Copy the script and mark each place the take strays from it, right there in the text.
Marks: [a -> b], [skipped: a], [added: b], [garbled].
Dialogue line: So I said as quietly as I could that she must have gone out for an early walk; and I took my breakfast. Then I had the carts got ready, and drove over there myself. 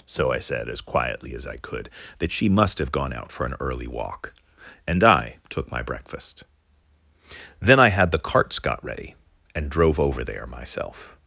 So I said as quietly as I could that she must have gone out for an early walk; and I took my breakfast. Then I had the carts got ready, and drove over there myself.